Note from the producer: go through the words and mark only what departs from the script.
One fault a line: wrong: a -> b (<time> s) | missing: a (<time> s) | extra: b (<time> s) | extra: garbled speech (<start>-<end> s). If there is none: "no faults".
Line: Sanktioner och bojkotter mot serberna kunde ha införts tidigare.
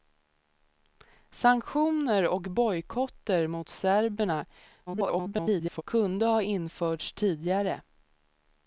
extra: garbled speech (4.9-5.8 s)